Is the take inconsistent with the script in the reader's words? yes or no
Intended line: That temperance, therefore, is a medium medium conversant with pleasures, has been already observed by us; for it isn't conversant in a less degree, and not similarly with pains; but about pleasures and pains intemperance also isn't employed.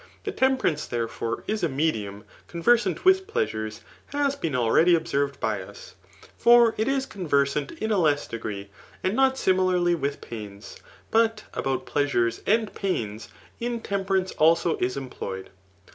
yes